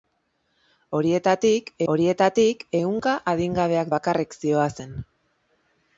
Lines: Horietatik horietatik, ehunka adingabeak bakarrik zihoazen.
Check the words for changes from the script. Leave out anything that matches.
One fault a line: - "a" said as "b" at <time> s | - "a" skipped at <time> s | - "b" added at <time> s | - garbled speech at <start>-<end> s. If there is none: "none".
none